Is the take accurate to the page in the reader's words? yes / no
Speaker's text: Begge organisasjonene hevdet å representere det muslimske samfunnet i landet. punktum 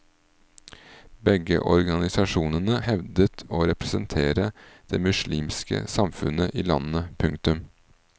yes